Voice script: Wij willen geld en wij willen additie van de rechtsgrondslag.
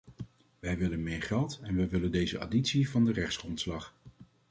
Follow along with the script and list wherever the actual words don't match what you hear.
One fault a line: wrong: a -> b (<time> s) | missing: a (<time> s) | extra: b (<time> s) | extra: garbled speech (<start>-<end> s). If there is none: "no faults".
extra: meer (1.0 s)
extra: deze (2.1 s)